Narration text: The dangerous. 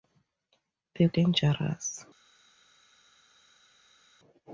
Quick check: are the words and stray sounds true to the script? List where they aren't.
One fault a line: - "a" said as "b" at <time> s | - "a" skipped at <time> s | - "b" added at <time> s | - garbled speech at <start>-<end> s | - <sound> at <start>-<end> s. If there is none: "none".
none